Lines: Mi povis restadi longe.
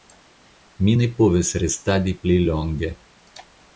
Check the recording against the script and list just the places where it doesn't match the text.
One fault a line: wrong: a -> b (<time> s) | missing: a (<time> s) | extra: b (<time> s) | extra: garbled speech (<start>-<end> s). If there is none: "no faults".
extra: ne (1.0 s)
extra: pli (2.3 s)